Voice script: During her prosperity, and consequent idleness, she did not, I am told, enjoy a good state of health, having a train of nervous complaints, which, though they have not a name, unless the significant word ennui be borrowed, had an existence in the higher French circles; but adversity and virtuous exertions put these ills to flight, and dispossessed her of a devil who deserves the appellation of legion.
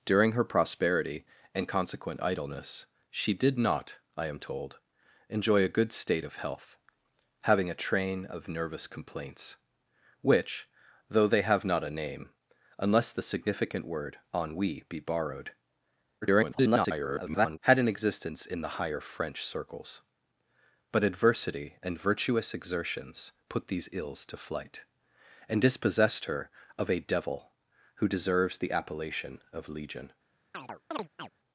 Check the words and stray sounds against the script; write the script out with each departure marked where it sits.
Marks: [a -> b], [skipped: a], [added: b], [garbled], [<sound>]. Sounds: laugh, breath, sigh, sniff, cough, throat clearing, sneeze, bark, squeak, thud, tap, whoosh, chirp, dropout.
During her prosperity, and consequent idleness, she did not, I am told, enjoy a good state of health, having a train of nervous complaints, which, though they have not a name, unless the significant word ennui be borrowed, [garbled] had an existence in the higher French circles; but adversity and virtuous exertions put these ills to flight, and dispossessed her of a devil who deserves the appellation of legion. [chirp]